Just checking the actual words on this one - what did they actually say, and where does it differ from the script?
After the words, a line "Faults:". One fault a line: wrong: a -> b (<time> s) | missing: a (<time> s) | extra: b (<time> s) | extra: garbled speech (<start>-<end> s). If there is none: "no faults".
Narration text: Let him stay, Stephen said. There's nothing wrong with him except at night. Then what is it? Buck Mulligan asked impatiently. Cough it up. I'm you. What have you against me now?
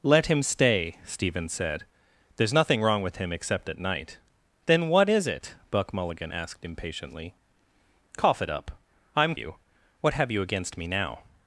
Let him stay, Stephen said. There's nothing wrong with him except at night. Then what is it? Buck Mulligan asked impatiently. Cough it up. I'm you. What have you against me now?
Faults:
no faults